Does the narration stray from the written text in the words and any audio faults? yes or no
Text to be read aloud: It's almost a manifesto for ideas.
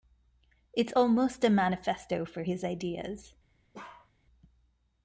yes